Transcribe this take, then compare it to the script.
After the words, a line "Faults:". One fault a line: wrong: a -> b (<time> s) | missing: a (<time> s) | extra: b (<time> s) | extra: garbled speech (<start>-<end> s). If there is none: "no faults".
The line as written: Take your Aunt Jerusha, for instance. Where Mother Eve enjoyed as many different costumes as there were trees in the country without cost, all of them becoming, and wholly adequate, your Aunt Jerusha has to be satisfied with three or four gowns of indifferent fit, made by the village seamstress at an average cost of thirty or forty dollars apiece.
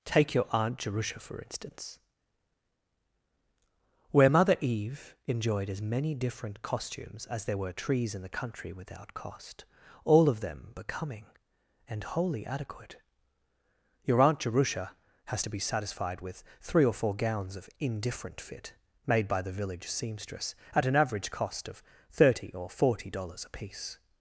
Take your Aunt Jerusha, for instance. Where Mother Eve enjoyed as many different costumes as there were trees in the country without cost, all of them becoming, and wholly adequate, your Aunt Jerusha has to be satisfied with three or four gowns of indifferent fit, made by the village seamstress at an average cost of thirty or forty dollars apiece.
Faults:
no faults